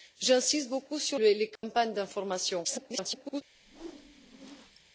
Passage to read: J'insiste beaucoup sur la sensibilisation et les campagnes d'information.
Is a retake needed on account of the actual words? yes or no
yes